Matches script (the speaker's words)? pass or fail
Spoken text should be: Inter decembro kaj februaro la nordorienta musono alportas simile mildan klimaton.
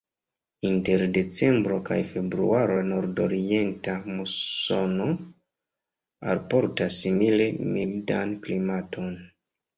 pass